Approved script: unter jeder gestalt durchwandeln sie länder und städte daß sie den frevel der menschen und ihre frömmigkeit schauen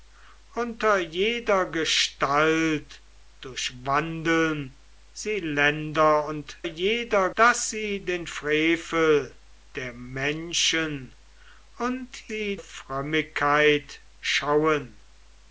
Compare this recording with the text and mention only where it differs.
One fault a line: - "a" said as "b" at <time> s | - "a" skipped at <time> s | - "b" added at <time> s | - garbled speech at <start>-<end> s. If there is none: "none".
- "städte" said as "jeder" at 6.6 s
- "ihre" said as "sie" at 12.3 s